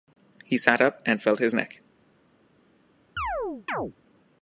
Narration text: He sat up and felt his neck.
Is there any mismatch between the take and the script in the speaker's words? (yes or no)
no